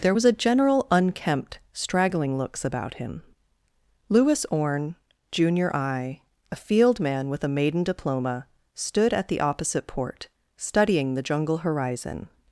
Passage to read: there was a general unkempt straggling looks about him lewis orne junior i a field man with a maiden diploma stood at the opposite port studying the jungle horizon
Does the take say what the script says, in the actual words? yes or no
yes